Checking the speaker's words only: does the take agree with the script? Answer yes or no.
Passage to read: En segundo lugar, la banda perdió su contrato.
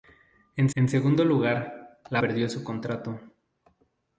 no